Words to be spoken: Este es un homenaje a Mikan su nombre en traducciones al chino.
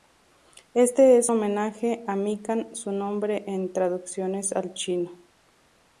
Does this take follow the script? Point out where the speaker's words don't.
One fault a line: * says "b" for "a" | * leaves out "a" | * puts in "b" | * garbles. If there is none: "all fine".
* leaves out "un"